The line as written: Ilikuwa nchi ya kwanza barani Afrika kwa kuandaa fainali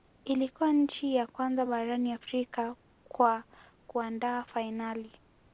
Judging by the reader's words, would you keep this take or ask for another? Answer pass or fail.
pass